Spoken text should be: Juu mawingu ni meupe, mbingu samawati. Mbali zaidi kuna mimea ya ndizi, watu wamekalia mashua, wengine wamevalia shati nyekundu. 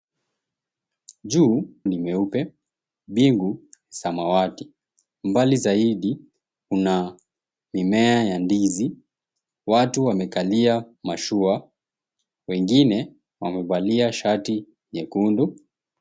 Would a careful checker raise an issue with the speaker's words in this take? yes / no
yes